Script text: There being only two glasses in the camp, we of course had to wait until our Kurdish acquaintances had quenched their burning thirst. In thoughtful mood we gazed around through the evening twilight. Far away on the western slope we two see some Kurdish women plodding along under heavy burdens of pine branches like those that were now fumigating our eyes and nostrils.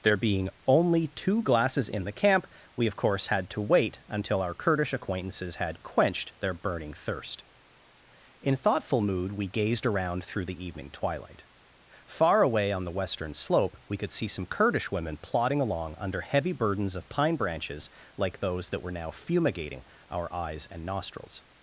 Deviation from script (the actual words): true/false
true